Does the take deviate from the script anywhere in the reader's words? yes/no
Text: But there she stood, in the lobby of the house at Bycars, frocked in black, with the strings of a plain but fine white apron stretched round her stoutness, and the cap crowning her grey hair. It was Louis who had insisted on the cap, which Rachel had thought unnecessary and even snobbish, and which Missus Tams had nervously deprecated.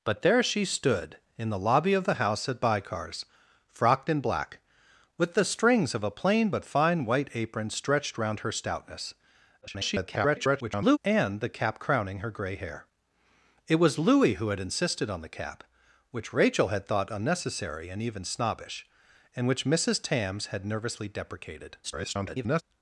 yes